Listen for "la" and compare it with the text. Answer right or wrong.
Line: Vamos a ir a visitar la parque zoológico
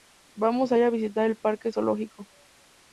wrong